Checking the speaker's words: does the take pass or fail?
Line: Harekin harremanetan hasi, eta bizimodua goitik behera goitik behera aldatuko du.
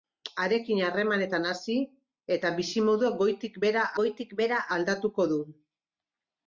pass